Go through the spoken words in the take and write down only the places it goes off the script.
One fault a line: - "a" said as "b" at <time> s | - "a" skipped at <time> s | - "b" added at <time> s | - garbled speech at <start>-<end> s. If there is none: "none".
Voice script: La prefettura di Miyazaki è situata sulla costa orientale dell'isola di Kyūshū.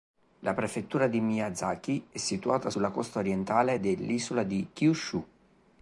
none